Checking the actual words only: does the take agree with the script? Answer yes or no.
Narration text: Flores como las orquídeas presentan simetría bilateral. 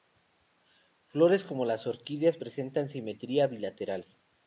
yes